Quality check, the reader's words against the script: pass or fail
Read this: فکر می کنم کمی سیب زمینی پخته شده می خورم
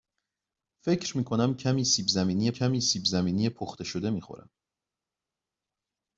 fail